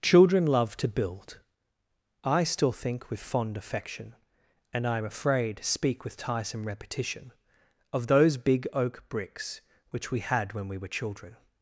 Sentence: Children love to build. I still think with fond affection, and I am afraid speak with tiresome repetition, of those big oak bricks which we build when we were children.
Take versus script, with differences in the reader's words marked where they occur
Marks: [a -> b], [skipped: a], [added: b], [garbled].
Children love to build. I still think with fond affection, and I am afraid speak with tiresome repetition, of those big oak bricks which we [build -> had] when we were children.